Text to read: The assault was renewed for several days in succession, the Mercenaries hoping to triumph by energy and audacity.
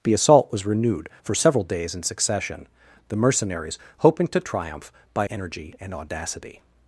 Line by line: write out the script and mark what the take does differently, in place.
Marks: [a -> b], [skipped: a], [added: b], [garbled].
The assault was renewed for several days in succession, the Mercenaries hoping to triumph by energy and audacity.